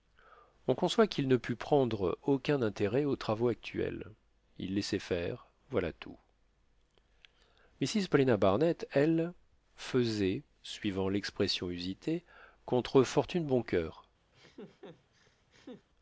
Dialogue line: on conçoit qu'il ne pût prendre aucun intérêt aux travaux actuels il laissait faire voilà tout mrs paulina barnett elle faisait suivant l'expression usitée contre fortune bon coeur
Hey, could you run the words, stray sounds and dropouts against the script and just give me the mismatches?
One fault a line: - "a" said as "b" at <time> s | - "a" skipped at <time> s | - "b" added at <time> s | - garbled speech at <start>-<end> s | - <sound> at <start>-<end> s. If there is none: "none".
- laugh at 14.3-15.9 s